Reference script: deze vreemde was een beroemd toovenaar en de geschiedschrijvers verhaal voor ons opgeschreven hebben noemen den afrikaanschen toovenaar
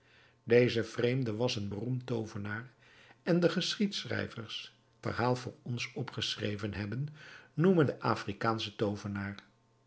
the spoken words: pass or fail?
pass